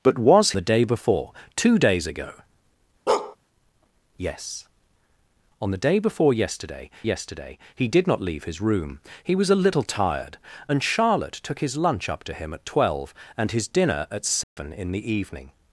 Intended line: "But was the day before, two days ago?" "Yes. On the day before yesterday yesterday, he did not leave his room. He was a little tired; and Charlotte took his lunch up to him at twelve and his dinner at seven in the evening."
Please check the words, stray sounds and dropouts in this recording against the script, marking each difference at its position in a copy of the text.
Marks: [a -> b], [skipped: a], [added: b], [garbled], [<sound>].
"But was the day before, two days ago?" [bark] "Yes. On the day before yesterday yesterday, he did not leave his room. He was a little tired; and Charlotte took his lunch up to him at twelve and his dinner at seven [dropout] in the evening."